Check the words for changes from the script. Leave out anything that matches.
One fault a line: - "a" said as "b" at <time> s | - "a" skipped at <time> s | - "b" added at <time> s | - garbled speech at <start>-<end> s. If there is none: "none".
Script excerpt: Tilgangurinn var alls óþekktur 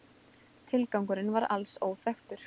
none